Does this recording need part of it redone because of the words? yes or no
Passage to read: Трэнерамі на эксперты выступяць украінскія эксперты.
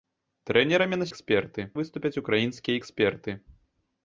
no